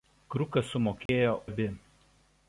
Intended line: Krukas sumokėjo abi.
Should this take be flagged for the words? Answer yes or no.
no